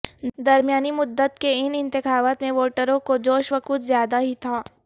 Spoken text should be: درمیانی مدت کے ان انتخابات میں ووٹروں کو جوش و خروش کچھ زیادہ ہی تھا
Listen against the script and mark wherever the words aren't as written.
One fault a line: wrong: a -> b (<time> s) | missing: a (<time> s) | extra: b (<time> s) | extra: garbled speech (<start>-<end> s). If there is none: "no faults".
missing: خروش (3.6 s)